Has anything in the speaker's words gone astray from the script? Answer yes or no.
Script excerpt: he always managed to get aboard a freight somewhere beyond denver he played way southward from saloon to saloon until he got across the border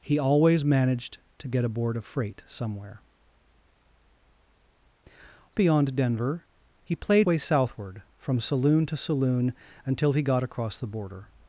no